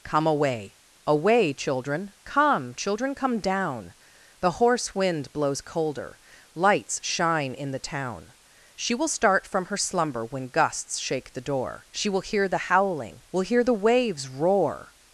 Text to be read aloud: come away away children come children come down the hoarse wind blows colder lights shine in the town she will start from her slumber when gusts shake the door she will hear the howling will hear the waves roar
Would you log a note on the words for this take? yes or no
no